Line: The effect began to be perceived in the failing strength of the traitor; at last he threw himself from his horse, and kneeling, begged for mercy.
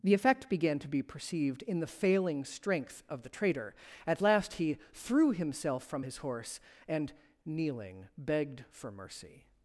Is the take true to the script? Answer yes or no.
yes